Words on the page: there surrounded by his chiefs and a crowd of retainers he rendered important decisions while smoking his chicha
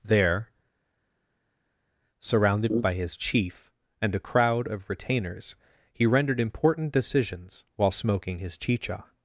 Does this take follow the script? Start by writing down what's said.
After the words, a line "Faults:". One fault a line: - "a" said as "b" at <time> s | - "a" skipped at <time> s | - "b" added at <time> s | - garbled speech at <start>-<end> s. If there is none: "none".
there surrounded by his chief and a crowd of retainers he rendered important decisions while smoking his chicha
Faults:
- "chiefs" said as "chief" at 3.2 s